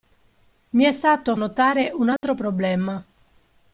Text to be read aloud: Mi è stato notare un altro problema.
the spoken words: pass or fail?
pass